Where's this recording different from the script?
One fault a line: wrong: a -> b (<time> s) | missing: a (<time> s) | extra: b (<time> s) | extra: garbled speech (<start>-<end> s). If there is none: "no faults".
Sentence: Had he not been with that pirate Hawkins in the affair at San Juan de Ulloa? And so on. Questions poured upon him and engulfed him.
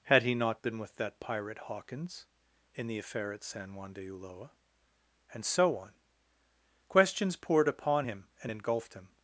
no faults